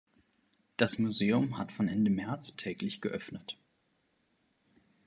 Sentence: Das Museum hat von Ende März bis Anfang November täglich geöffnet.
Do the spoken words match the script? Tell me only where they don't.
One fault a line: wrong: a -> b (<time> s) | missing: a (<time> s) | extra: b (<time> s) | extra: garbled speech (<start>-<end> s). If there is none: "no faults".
missing: bis Anfang November (2.5 s)